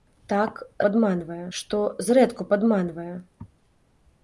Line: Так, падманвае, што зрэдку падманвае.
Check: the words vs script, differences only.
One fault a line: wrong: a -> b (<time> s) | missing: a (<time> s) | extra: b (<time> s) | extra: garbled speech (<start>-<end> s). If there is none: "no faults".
no faults